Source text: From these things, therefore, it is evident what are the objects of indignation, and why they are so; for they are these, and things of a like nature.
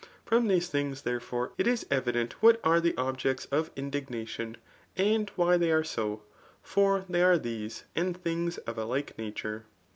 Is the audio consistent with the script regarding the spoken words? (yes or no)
yes